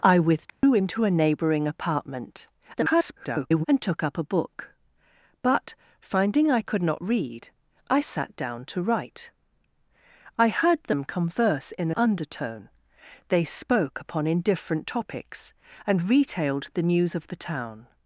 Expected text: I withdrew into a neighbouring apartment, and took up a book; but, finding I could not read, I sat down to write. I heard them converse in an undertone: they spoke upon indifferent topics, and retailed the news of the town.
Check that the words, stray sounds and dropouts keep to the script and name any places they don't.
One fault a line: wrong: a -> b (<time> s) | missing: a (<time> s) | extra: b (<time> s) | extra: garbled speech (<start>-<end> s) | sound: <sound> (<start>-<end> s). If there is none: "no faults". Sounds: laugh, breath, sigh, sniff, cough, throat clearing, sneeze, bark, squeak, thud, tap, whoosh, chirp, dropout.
sound: dropout (0.5-0.6 s)
extra: garbled speech (2.8-3.6 s)
missing: an (11.9 s)